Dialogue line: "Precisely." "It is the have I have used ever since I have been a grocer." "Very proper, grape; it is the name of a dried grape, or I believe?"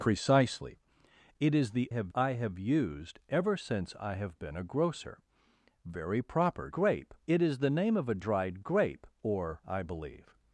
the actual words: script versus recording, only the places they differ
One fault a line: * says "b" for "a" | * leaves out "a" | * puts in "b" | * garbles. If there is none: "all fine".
all fine